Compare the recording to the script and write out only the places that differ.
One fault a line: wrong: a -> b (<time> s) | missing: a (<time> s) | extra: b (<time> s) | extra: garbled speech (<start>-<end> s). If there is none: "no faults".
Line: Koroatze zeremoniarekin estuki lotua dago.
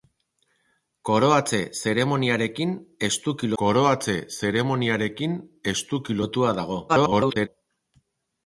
extra: koroatze zeremoniarekin estuki (3.6 s)
extra: garbled speech (6.9-7.5 s)